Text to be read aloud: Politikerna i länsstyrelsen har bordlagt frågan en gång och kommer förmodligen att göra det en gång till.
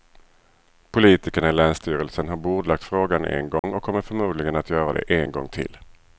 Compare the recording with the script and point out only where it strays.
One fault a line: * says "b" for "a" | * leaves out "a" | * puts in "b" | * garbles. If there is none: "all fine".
all fine